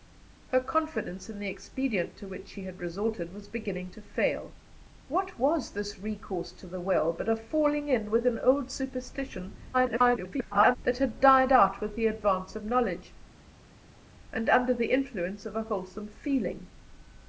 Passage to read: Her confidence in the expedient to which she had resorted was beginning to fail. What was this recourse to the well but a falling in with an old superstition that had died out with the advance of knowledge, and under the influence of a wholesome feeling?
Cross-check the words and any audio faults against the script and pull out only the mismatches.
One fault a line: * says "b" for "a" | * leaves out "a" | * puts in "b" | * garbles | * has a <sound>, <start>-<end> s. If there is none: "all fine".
* garbles